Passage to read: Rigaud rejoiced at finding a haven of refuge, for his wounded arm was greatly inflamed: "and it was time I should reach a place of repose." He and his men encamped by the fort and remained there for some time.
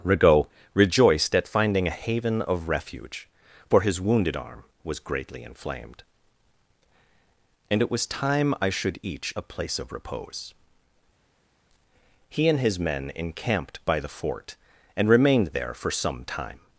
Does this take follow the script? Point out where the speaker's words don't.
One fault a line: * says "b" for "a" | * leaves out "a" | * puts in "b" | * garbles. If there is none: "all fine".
* says "each" for "reach"